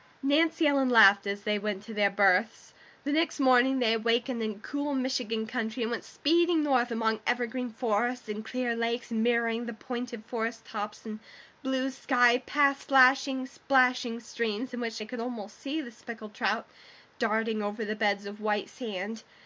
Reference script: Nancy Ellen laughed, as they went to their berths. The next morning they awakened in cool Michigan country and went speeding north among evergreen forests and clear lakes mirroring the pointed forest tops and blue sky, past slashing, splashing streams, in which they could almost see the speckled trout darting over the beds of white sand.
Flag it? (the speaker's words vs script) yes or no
no